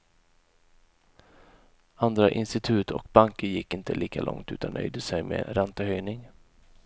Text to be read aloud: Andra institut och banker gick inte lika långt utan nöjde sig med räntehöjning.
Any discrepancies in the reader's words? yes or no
no